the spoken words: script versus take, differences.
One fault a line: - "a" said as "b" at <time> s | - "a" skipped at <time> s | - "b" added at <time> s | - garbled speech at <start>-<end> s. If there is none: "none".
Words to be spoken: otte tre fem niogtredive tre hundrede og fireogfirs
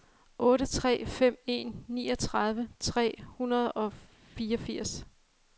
- "en" added at 1.4 s